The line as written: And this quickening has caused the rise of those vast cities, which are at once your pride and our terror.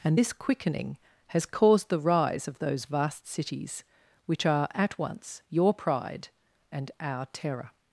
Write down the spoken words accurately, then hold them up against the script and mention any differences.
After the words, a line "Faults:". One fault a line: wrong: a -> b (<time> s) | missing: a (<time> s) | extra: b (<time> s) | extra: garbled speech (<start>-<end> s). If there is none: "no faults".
And this quickening has caused the rise of those vast cities, which are at once your pride and our terror.
Faults:
no faults